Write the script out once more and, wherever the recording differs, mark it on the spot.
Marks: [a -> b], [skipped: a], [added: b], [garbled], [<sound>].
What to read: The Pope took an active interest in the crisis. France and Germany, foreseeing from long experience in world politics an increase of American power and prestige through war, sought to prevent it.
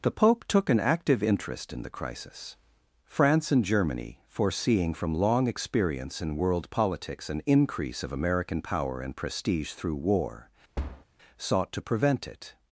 The Pope took an active interest in the crisis. France and Germany, foreseeing from long experience in world politics an increase of American power and prestige through war, [thud] sought to prevent it.